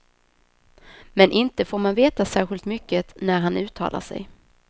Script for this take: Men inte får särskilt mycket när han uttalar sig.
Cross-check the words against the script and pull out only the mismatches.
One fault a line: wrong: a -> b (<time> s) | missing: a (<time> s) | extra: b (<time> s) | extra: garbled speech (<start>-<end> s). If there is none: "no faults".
extra: man veta (1.8 s)